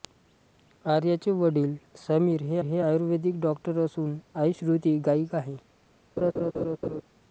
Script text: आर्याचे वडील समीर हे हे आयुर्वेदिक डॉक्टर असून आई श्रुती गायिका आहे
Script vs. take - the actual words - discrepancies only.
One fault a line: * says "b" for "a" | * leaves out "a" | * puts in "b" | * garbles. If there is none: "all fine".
all fine